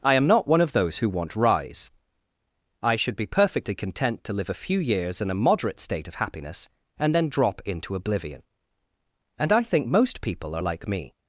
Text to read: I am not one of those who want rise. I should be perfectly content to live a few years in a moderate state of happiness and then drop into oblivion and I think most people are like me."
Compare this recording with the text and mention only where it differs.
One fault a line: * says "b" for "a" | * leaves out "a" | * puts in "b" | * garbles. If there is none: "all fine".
all fine